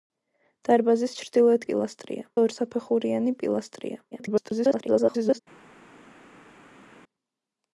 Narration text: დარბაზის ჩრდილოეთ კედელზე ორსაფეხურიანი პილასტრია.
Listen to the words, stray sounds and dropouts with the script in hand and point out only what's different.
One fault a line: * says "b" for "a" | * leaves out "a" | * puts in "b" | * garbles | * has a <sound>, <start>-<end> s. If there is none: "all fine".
* says "პილასტრია" for "კედელზე"
* garbles